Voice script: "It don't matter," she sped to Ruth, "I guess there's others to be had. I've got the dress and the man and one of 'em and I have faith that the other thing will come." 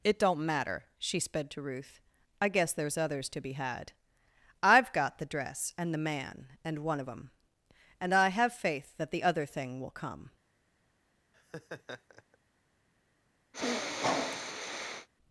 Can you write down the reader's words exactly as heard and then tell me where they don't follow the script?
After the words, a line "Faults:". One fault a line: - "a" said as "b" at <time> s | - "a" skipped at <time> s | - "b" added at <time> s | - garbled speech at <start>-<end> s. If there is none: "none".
"It don't matter," she sped to Ruth, "I guess there's others to be had. I've got the dress and the man and one of 'em and I have faith that the other thing will come."
Faults:
none